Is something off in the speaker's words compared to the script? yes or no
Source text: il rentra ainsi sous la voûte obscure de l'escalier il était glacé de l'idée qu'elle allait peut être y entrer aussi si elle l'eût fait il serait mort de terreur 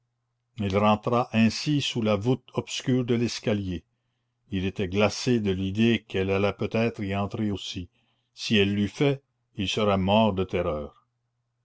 no